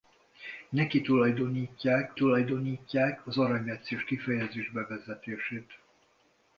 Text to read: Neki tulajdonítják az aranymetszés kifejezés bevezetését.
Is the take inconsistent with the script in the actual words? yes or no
yes